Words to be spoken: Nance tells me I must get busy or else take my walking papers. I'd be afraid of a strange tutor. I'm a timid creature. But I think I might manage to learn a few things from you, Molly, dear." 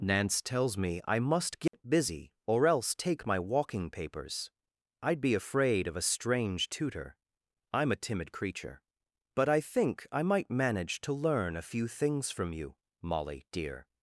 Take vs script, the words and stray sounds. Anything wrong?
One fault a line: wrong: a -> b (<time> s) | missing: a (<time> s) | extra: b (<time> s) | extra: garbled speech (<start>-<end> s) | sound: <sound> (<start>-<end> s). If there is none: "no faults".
sound: dropout (1.7-1.7 s)